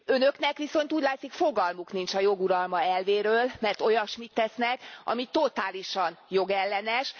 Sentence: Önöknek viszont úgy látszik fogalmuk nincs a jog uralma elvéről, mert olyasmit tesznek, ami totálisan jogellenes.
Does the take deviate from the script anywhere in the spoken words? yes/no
no